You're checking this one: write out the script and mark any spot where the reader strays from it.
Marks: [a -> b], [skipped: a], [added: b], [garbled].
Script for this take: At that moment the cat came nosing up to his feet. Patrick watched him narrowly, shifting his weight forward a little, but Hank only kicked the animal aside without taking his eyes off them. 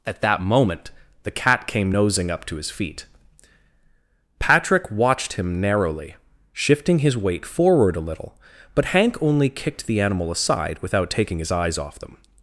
At that moment the cat came nosing up to his feet. Patrick watched him narrowly, shifting his weight forward a little, but Hank only kicked the animal aside without taking his eyes off them.